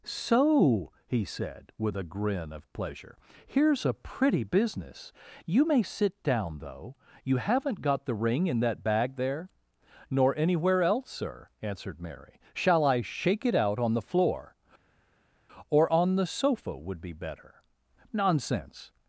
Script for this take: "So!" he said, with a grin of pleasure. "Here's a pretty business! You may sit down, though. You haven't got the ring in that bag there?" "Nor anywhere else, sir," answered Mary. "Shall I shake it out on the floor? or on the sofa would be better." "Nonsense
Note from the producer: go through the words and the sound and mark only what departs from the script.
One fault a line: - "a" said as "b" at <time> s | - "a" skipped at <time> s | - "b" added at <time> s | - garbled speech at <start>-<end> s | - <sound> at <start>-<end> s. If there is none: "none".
none